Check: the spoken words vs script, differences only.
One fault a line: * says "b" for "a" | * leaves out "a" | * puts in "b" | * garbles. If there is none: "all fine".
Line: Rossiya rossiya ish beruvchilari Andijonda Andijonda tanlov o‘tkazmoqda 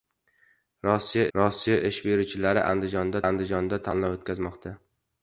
all fine